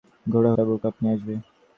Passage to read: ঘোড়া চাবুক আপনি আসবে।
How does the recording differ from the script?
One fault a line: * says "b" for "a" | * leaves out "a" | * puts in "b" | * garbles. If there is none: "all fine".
all fine